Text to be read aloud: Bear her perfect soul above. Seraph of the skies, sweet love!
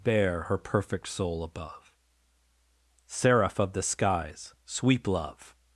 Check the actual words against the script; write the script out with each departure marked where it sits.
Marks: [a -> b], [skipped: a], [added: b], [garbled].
Bear her perfect soul above. Seraph of the skies, [sweet -> sweep] love!